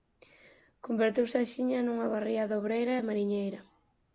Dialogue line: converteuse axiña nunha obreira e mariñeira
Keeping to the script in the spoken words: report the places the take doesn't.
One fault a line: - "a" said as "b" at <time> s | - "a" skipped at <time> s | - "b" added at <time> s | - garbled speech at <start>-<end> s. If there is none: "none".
- "barriada" added at 2.1 s